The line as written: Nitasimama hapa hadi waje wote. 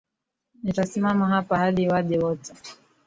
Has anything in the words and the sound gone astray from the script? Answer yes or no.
no